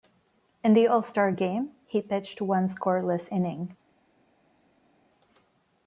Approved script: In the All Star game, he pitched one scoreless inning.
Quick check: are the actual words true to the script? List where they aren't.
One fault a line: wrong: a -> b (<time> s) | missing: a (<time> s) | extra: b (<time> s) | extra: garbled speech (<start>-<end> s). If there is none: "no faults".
no faults